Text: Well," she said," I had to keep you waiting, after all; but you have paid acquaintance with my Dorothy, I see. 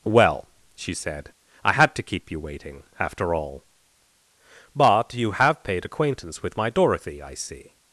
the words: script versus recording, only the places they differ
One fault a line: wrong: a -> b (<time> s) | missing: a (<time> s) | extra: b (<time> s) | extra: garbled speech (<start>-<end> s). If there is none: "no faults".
no faults